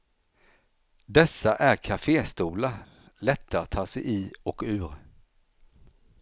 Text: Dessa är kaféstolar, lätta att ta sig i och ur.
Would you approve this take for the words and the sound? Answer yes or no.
yes